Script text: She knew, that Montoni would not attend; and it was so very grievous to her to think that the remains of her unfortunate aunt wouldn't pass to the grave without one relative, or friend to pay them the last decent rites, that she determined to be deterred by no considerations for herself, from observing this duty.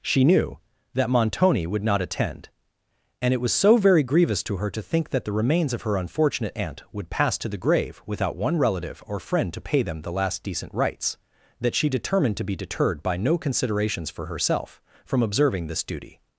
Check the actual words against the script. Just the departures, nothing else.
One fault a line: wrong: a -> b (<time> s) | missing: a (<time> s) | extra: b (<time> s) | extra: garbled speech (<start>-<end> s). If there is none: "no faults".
wrong: wouldn't -> would (6.9 s)